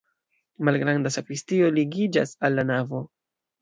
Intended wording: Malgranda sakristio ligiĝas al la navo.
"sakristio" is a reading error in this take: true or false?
false